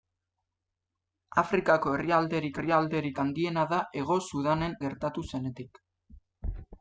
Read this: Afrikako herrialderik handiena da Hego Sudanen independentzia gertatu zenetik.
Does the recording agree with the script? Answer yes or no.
no